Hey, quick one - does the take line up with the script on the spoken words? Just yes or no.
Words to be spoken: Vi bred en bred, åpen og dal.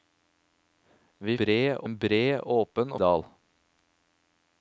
yes